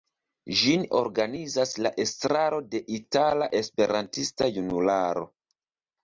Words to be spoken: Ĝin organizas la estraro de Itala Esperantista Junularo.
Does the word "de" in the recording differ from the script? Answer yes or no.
no